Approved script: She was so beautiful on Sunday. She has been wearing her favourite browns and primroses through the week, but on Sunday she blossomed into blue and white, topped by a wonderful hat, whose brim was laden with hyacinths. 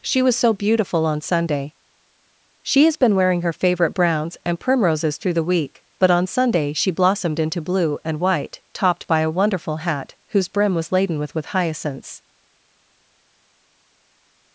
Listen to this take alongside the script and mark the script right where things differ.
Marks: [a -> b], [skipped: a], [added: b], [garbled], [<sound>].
She was so beautiful on Sunday. She has been wearing her favourite browns and primroses through the week, but on Sunday she blossomed into blue and white, topped by a wonderful hat, whose brim was laden with [added: with] hyacinths.